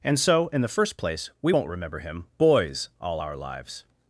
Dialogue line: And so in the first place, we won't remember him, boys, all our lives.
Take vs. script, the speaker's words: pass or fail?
pass